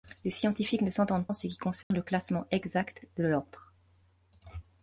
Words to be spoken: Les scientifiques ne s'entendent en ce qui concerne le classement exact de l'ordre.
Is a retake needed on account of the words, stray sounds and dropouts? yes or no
yes